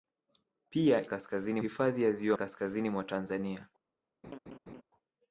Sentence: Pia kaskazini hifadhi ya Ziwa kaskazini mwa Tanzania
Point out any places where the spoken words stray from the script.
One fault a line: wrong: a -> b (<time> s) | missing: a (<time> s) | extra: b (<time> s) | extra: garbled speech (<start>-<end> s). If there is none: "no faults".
no faults